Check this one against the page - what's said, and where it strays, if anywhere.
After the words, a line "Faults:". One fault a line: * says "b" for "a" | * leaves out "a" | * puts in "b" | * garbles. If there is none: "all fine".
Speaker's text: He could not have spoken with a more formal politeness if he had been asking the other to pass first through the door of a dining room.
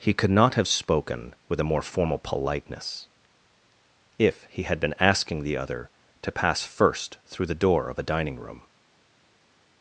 He could not have spoken with a more formal politeness if he had been asking the other to pass first through the door of a dining room.
Faults:
all fine